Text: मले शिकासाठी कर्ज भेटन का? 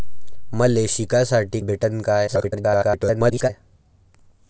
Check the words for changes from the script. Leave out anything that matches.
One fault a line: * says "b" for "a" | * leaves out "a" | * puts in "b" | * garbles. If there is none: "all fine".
* leaves out "कर्ज"
* garbles